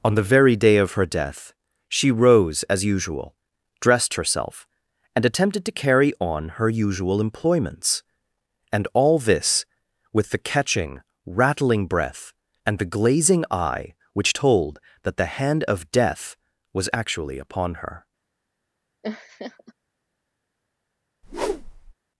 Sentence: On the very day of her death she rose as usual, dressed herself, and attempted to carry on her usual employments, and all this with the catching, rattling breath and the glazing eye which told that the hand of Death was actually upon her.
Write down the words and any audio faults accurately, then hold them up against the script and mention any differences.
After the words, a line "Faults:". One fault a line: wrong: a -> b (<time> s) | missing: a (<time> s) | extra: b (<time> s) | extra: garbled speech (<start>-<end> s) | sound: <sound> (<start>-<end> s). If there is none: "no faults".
On the very day of her death she rose as usual, dressed herself, and attempted to carry on her usual employments, and all this with the catching, rattling breath and the glazing eye which told that the hand of Death was actually upon her.
Faults:
sound: laugh (19.0-19.7 s)
sound: whoosh (21.2-21.9 s)